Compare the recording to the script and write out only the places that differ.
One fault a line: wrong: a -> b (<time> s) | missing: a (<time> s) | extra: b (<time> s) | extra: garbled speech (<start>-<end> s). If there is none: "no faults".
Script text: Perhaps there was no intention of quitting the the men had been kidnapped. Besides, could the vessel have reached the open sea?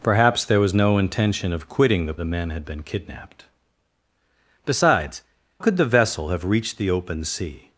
no faults